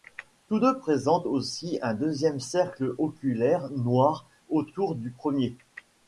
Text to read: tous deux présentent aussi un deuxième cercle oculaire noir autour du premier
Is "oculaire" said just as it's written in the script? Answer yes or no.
yes